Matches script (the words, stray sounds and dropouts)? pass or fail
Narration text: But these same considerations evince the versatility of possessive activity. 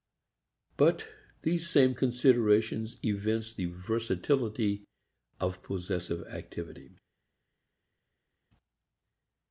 pass